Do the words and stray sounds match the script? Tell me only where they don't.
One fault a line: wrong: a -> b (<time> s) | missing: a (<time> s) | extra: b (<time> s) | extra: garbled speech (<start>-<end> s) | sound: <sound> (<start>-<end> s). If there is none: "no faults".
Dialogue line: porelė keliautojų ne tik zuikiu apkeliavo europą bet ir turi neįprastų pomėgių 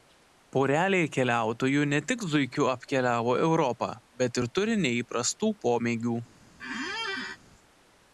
sound: squeak (6.6-7.4 s)